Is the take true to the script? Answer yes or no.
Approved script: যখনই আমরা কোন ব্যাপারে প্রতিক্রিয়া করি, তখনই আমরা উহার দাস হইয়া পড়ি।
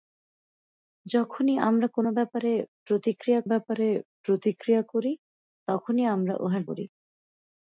no